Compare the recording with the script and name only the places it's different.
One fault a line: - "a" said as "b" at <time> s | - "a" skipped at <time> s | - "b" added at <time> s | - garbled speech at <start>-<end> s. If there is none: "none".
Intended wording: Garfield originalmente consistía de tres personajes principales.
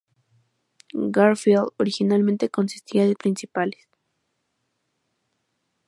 - "tres personajes" skipped at 3.1 s